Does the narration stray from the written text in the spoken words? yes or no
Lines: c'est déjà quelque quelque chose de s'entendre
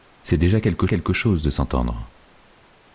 no